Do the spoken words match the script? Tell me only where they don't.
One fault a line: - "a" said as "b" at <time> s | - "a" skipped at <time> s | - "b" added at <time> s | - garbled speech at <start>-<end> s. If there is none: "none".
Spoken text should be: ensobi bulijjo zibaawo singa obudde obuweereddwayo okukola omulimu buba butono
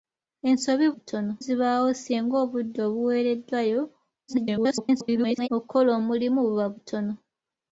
- "bulijjo" said as "butono" at 0.9 s
- garbled speech at 4.3-5.5 s